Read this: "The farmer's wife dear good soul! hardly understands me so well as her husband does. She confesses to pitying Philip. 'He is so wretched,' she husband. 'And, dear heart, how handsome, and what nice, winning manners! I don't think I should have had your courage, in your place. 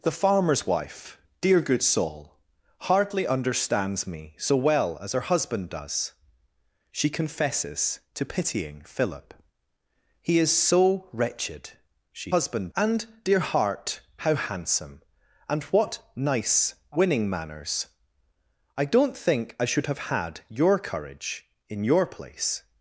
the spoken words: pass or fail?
pass